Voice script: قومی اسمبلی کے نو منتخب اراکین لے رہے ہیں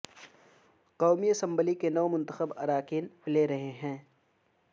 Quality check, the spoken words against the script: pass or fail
pass